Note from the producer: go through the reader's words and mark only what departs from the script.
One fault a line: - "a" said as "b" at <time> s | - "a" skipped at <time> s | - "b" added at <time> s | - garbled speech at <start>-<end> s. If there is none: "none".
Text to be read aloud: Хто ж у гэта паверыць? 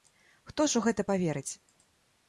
none